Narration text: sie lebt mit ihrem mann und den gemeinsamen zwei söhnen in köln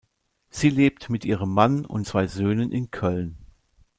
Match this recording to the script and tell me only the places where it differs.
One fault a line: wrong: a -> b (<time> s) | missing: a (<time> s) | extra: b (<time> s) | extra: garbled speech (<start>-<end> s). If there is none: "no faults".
missing: den gemeinsamen (2.0 s)